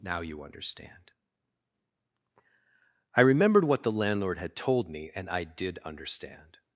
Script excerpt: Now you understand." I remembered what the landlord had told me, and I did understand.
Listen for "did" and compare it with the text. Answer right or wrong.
right